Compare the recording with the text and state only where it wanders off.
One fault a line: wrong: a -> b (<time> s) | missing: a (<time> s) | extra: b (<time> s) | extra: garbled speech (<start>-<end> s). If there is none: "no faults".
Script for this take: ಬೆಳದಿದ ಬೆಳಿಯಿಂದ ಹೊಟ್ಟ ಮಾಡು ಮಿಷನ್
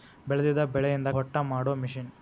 no faults